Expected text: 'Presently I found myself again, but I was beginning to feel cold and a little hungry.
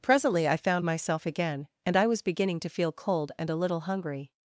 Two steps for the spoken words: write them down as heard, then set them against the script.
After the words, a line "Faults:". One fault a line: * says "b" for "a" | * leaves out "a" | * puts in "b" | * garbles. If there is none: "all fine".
'Presently I found myself again, and I was beginning to feel cold and a little hungry.
Faults:
* says "and" for "but"